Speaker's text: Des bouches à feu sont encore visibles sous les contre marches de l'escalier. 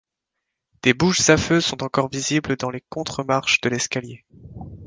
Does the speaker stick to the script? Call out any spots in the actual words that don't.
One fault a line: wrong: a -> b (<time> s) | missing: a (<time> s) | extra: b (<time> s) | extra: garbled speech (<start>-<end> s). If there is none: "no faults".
wrong: sous -> dans (2.6 s)